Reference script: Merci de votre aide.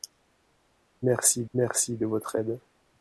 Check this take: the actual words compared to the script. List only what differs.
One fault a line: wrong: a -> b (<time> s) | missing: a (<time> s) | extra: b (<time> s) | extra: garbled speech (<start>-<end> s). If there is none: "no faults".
extra: merci (1.5 s)